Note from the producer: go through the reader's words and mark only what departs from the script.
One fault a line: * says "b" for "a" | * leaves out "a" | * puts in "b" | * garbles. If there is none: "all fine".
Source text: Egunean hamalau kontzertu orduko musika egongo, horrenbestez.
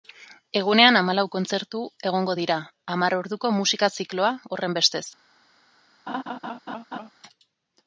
* puts in "egongo dira hamar"
* says "zikloa" for "egongo"